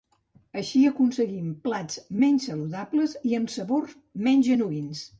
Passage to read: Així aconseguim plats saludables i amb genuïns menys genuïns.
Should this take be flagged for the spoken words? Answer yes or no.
yes